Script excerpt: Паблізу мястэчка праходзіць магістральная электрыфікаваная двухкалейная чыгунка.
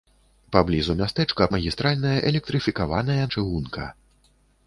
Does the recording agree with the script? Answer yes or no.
no